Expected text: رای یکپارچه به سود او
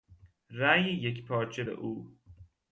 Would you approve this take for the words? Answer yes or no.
no